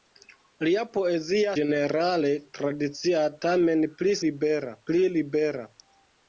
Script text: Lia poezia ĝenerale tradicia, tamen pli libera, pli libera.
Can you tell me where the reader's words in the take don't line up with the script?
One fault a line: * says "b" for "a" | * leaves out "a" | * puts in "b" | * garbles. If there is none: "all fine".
all fine